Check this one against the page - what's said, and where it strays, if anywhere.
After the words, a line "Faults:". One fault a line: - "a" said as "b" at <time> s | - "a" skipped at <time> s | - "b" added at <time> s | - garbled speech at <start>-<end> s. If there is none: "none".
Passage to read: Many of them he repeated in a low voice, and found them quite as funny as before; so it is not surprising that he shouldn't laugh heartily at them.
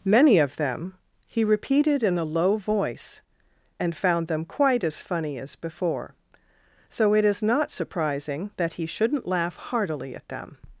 Many of them he repeated in a low voice, and found them quite as funny as before; so it is not surprising that he shouldn't laugh heartily at them.
Faults:
none